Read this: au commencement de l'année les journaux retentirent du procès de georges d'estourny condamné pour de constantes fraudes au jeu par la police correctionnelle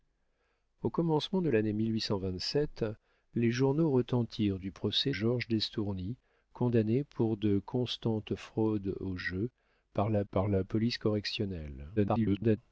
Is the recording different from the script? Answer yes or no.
yes